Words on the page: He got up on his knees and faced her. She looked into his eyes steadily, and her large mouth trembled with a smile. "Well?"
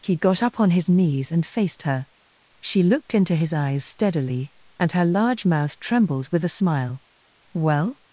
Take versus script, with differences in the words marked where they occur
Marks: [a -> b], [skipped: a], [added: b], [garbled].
He got up on his knees and faced her. She looked into his eyes steadily, and her large mouth trembled with a smile. "Well?"